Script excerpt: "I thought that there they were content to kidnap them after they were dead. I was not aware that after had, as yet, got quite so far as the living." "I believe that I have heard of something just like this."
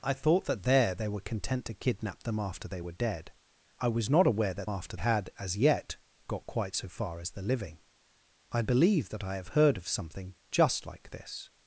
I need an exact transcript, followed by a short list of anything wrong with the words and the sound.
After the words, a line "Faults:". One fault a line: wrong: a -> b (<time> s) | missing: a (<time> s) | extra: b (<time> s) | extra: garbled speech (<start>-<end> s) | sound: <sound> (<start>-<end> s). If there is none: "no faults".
"I thought that there they were content to kidnap them after they were dead. I was not aware that after had, as yet, got quite so far as the living." "I believe that I have heard of something just like this."
Faults:
no faults